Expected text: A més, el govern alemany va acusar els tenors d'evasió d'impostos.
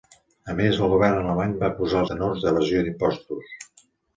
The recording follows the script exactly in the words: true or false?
false